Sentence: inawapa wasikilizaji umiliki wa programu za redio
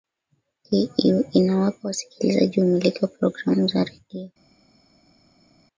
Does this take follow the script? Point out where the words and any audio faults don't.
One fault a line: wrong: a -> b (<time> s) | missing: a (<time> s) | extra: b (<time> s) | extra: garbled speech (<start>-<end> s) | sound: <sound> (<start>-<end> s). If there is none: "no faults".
no faults